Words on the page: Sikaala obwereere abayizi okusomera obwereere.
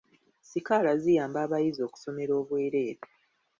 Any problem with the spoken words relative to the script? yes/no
yes